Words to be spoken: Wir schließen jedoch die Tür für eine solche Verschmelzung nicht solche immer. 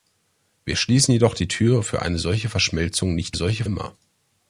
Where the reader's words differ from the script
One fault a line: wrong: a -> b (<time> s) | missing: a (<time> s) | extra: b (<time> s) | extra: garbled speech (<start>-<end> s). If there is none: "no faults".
no faults